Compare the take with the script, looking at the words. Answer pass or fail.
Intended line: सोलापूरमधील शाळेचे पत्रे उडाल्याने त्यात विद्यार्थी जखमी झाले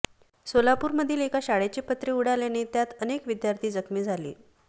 fail